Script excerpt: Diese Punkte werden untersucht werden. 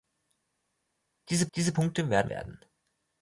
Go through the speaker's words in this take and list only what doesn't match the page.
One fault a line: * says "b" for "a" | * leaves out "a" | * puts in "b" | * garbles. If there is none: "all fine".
* puts in "diese"
* leaves out "untersucht"